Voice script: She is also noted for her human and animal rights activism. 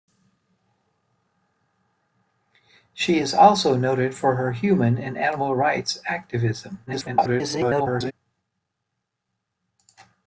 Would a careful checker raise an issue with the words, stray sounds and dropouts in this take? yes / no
yes